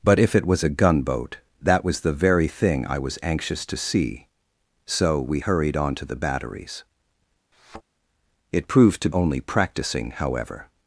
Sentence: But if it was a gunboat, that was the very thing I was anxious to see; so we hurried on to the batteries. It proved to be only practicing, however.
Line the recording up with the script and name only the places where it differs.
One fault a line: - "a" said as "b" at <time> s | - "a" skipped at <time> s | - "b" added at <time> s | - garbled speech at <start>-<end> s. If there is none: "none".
- "be" skipped at 9.1 s